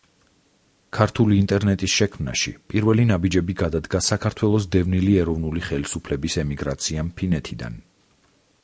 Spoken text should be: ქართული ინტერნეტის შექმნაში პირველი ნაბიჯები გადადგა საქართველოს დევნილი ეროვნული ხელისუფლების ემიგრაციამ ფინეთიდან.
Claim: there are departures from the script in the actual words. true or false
false